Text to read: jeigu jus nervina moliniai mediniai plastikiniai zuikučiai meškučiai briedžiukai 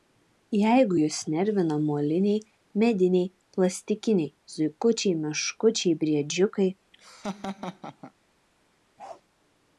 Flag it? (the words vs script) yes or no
no